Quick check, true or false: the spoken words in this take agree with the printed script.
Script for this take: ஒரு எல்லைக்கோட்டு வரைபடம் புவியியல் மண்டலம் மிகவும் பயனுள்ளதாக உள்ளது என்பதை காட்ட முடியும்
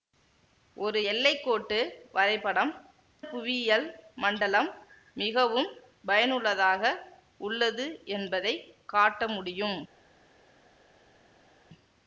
true